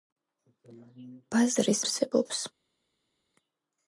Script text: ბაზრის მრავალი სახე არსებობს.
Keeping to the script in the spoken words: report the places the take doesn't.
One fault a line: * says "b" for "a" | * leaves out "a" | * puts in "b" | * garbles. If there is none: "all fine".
* leaves out "მრავალი სახე"